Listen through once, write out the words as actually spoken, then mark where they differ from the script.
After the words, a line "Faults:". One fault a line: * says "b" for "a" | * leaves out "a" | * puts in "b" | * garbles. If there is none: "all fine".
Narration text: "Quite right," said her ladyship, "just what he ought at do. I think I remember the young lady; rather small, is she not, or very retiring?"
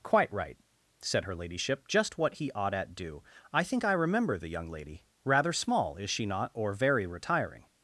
"Quite right," said her ladyship, "just what he ought at do. I think I remember the young lady; rather small, is she not, or very retiring?"
Faults:
all fine